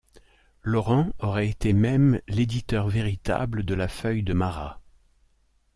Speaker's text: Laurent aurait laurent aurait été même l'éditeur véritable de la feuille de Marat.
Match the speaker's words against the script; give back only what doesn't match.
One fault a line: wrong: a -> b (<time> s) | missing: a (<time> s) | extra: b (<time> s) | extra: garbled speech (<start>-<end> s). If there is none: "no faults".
missing: laurent aurait (1.5 s)